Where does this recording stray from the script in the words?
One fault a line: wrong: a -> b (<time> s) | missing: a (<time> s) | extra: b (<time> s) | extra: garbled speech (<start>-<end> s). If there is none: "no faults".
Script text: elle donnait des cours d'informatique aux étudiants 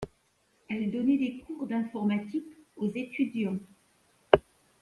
no faults